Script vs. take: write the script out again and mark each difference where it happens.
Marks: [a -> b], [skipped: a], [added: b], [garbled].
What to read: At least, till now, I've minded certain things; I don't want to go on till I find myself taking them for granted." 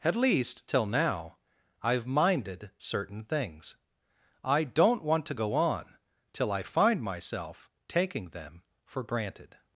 At least, till now, I've minded certain things; I don't want to go on till I find myself taking them for granted."